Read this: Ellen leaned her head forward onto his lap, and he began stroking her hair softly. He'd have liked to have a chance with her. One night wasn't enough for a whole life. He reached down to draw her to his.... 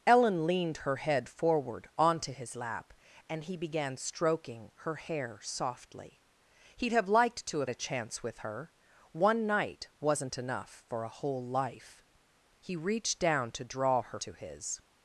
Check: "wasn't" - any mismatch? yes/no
no